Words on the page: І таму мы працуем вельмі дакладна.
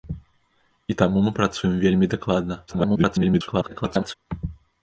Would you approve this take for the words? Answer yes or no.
no